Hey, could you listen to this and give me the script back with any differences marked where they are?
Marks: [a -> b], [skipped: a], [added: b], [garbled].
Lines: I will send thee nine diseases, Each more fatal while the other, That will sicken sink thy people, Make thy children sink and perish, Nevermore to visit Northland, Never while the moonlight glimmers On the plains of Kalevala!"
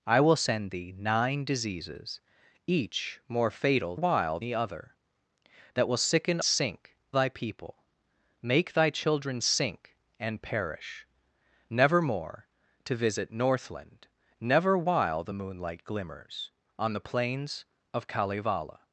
I will send thee nine diseases, Each more fatal while the other, That will sicken sink thy people, Make thy children sink and perish, Nevermore to visit Northland, Never while the moonlight glimmers On the plains of Kalevala!"